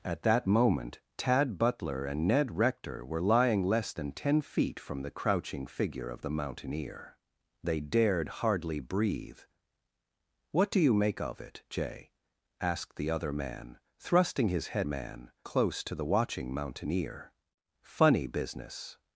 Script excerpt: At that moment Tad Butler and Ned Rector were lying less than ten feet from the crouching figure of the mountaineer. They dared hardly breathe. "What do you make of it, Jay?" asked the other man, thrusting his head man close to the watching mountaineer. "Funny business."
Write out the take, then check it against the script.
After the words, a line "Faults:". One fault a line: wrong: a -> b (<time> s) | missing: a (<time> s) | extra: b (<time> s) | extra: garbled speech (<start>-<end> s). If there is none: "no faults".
At that moment Tad Butler and Ned Rector were lying less than ten feet from the crouching figure of the mountaineer. They dared hardly breathe. "What do you make of it, Jay?" asked the other man, thrusting his head man close to the watching mountaineer. "Funny business."
Faults:
no faults